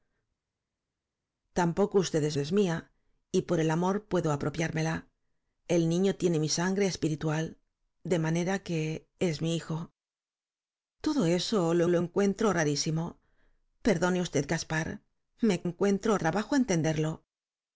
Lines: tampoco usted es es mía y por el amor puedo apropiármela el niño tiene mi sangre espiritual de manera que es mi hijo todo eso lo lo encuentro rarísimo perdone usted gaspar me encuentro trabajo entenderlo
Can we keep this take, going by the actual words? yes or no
yes